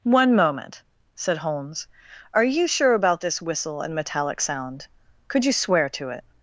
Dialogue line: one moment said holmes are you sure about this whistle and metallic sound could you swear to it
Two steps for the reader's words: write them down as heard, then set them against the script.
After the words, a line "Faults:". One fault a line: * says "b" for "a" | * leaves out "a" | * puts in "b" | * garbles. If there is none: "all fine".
one moment said holmes are you sure about this whistle and metallic sound could you swear to it
Faults:
all fine